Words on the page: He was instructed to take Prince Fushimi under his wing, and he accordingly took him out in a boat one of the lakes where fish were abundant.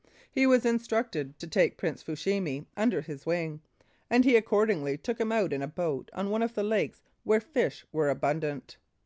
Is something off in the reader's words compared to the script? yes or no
yes